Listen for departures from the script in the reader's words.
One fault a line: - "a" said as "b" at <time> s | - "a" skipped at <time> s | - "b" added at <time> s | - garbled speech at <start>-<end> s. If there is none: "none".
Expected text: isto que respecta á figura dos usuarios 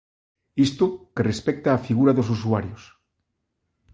none